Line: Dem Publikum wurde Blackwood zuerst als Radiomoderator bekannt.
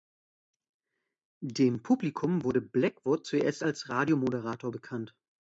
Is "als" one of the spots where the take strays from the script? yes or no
no